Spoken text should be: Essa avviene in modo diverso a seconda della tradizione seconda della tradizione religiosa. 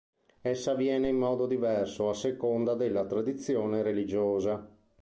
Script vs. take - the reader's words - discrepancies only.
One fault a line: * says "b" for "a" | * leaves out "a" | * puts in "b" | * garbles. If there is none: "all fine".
* leaves out "seconda della tradizione"